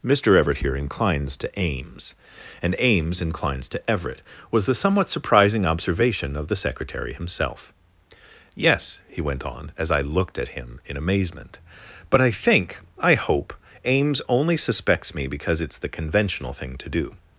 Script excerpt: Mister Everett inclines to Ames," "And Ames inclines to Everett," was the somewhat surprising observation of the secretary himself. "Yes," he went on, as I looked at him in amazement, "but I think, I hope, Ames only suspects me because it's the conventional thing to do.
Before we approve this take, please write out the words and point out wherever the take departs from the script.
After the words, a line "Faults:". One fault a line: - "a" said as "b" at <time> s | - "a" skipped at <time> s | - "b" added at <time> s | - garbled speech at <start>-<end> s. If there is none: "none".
Mister Everett here inclines to Ames," "And Ames inclines to Everett," was the somewhat surprising observation of the secretary himself. "Yes," he went on, as I looked at him in amazement, "but I think, I hope, Ames only suspects me because it's the conventional thing to do.
Faults:
- "here" added at 0.6 s